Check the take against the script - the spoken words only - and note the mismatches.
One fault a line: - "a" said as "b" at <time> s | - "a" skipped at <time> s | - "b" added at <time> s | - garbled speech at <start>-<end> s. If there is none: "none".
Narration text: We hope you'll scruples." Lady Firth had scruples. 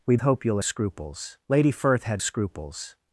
none